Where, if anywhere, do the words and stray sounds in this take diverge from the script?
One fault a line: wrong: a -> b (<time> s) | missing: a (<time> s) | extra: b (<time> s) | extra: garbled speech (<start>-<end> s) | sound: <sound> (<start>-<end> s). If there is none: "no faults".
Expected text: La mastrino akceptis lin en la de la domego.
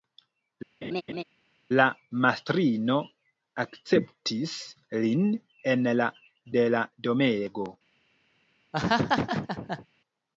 sound: laugh (0.8-1.2 s)
sound: laugh (8.7-9.9 s)